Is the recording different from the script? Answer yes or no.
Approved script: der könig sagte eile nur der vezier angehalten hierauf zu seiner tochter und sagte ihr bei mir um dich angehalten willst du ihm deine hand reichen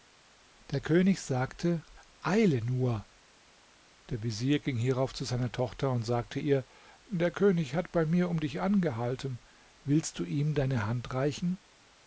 yes